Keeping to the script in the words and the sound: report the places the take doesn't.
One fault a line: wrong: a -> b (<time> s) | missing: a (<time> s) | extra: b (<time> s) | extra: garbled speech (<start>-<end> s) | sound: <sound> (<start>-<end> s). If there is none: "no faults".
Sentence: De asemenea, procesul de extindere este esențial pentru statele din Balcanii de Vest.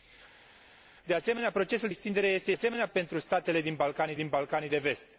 missing: de (1.9 s)
wrong: esențial -> asemenea (2.5 s)
extra: din Balcanii (4.1 s)